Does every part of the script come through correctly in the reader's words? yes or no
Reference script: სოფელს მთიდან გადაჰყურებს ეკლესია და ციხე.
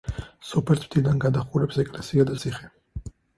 yes